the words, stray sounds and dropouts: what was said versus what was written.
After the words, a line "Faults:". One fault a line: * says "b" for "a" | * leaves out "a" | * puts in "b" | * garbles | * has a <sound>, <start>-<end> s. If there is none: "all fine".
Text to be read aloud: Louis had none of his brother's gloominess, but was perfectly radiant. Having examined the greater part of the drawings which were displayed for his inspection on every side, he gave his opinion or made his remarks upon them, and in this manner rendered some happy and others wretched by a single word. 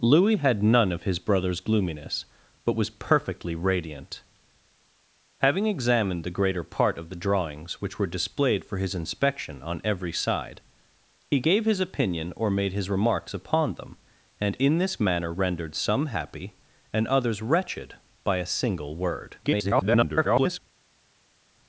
Louis had none of his brother's gloominess, but was perfectly radiant. Having examined the greater part of the drawings which were displayed for his inspection on every side, he gave his opinion or made his remarks upon them, and in this manner rendered some happy and others wretched by a single word. [garbled]
Faults:
* garbles